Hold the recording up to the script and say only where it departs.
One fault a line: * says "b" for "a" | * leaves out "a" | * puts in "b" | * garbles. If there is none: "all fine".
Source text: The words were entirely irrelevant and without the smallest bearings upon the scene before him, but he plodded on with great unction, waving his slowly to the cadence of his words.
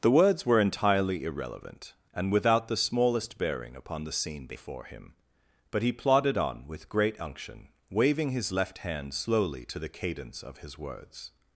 * says "bearing" for "bearings"
* puts in "left hand"